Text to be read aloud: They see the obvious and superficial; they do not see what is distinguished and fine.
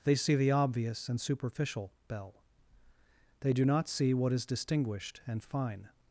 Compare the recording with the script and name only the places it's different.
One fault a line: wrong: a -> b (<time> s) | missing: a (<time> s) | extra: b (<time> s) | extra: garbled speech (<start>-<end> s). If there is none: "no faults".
extra: bell (2.1 s)